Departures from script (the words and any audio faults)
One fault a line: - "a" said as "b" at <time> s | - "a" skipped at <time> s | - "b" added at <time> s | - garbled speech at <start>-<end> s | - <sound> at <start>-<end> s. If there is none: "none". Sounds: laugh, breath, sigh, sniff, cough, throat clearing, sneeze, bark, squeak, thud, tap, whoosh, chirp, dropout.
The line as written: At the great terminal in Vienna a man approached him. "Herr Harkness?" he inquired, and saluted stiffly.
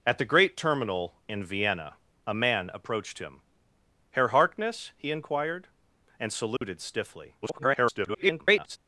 - dropout at 6.6-6.6 s
- garbled speech at 7.4-8.8 s